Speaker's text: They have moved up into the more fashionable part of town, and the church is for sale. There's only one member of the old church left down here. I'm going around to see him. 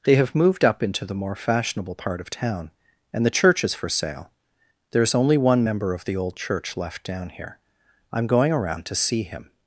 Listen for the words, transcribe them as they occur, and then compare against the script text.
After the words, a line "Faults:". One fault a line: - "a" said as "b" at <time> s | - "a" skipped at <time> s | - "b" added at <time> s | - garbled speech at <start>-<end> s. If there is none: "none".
They have moved up into the more fashionable part of town, and the church is for sale. There's only one member of the old church left down here. I'm going around to see him.
Faults:
none